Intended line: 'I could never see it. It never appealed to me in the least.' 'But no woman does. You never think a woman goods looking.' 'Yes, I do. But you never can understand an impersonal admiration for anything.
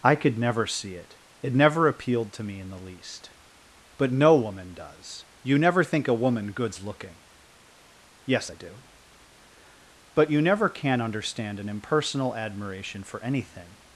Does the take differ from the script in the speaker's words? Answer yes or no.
no